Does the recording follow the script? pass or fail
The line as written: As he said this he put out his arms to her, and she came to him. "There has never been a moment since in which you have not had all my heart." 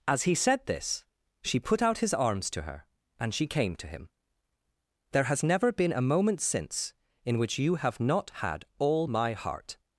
fail